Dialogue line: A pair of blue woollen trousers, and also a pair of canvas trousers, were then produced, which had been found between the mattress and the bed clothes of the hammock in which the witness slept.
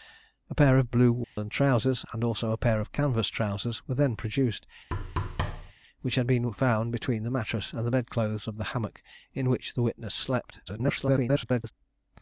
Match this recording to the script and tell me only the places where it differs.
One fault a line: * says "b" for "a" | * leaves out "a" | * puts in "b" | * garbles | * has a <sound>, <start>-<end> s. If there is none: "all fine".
* has a dropout, 1.2-1.4 s
* has a thud, 4.9-5.7 s
* garbles